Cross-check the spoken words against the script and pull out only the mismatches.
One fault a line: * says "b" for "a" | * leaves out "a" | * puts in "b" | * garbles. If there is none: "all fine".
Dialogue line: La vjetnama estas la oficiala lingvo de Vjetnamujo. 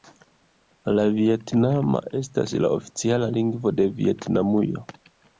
all fine